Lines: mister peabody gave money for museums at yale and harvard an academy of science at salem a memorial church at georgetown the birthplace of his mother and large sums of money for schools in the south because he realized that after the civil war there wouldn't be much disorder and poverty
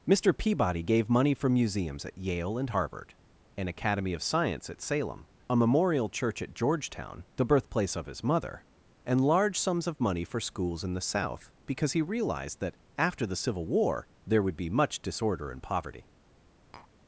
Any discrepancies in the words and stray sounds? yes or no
yes